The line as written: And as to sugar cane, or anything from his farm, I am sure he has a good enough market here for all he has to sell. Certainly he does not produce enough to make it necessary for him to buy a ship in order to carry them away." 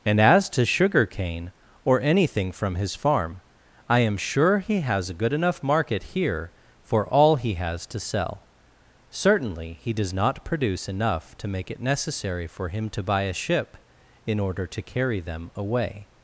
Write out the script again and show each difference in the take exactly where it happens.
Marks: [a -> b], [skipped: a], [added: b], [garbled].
And as to sugar cane, or anything from his farm, I am sure he has a good enough market here for all he has to sell. Certainly he does not produce enough to make it necessary for him to buy a ship in order to carry them away."